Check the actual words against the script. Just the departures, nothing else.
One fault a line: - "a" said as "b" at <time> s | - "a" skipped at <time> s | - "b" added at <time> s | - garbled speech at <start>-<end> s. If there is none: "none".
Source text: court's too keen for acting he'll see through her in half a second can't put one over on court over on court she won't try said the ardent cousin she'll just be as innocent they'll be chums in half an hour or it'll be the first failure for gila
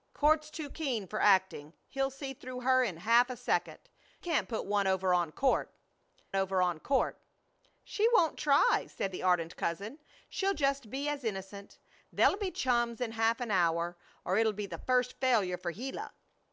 none